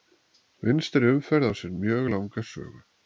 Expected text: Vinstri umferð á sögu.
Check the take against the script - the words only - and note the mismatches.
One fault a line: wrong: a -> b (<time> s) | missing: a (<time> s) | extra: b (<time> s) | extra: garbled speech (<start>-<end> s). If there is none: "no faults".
extra: sér mjög langa (1.6 s)